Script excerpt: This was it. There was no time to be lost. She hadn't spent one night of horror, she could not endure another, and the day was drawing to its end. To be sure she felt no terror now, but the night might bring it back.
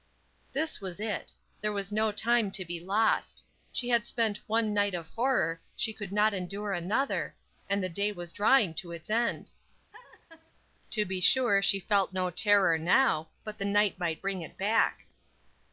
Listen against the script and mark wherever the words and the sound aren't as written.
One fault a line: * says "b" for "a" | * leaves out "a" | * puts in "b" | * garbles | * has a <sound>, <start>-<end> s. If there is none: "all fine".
* says "had" for "hadn't"
* has a laugh, 9.9-10.5 s